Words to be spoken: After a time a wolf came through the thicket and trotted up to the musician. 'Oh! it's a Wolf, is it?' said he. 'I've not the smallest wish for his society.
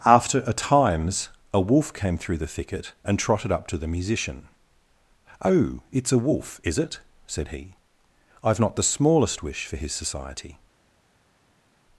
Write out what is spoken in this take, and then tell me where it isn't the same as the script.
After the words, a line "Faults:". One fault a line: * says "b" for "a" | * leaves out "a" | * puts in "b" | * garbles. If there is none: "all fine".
After a times a wolf came through the thicket and trotted up to the musician. 'Oh! it's a Wolf, is it?' said he. 'I've not the smallest wish for his society.
Faults:
* says "times" for "time"